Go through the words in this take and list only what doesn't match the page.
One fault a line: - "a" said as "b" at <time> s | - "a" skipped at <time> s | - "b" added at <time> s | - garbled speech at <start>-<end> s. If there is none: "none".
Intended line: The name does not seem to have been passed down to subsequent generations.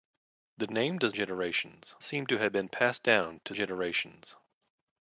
- "not" said as "generations" at 1.1 s
- "subsequent" skipped at 3.5 s